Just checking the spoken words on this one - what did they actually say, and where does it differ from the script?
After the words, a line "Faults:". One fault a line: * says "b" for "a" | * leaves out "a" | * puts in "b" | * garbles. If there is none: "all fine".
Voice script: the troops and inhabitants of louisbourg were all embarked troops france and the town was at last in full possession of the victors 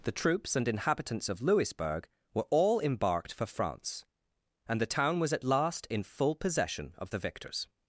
the troops and inhabitants of louisbourg were all embarked for france and the town was at last in full possession of the victors
Faults:
* says "for" for "troops"